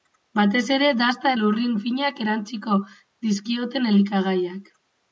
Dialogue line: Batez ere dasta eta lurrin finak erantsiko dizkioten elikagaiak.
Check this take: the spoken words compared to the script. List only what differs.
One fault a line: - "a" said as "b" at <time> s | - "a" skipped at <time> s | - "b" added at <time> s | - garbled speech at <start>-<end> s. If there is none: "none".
- "eta" skipped at 1.3 s